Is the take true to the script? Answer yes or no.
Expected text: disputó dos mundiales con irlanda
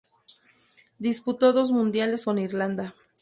yes